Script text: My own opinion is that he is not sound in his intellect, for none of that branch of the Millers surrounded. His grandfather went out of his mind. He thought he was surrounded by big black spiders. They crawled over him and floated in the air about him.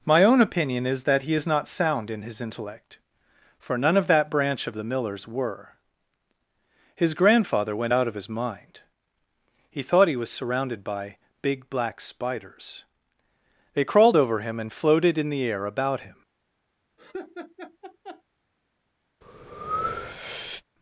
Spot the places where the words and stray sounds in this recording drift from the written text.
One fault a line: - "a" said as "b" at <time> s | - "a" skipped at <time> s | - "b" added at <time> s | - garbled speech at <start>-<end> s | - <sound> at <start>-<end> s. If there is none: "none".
- "surrounded" said as "were" at 5.3 s
- laugh at 17.0-18.2 s
- breath at 19.2-20.6 s